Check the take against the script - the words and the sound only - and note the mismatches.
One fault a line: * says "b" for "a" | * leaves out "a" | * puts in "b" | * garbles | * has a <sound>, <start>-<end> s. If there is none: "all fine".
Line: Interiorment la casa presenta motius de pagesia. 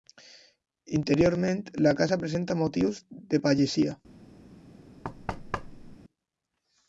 * has a thud, 5.0-6.0 s